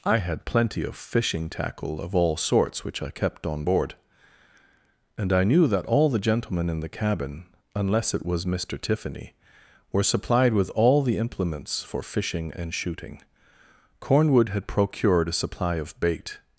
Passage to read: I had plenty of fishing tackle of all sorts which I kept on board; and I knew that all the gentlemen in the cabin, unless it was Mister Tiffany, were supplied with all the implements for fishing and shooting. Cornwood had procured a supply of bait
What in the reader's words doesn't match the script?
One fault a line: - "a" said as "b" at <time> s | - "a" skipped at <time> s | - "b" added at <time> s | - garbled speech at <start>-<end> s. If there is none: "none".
none